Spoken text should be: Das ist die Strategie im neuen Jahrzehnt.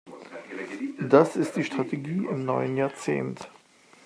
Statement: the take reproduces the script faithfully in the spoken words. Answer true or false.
true